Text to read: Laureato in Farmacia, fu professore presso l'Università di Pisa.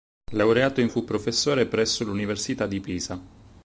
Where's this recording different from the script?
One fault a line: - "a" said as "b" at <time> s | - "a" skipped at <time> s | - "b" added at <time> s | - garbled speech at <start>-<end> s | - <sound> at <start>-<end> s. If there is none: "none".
- "Farmacia" skipped at 0.9 s